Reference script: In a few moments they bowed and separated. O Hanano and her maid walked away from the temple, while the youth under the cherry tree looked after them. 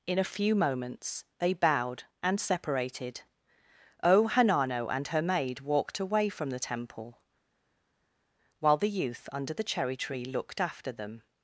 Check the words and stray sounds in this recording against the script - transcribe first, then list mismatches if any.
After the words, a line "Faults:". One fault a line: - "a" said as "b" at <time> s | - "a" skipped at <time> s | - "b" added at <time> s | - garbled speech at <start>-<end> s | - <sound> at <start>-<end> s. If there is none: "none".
In a few moments they bowed and separated. O Hanano and her maid walked away from the temple, while the youth under the cherry tree looked after them.
Faults:
none